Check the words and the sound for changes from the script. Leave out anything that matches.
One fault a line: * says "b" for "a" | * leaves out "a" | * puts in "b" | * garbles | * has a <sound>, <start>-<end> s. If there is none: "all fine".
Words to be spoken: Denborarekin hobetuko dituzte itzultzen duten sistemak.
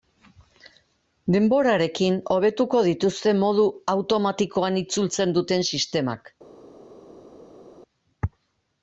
* puts in "modu automatikoan"